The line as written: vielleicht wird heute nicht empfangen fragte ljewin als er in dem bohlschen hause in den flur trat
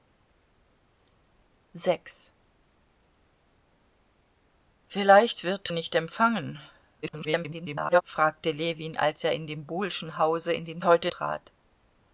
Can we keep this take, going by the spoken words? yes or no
no